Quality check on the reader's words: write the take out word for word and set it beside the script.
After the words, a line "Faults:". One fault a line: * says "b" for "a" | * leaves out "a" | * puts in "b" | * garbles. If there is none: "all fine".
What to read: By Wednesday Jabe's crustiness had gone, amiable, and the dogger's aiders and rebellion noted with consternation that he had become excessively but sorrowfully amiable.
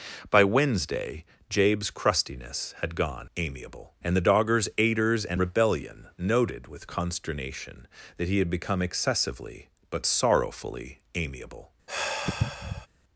By Wednesday Jabe's crustiness had gone, amiable, and the dogger's aiders and rebellion noted with consternation that he had become excessively but sorrowfully amiable.
Faults:
all fine